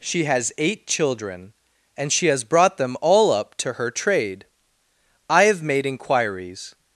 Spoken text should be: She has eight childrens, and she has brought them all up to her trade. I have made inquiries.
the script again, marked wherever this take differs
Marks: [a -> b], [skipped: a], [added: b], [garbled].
She has eight [childrens, -> children] and she has brought them all up to her trade. I have made inquiries.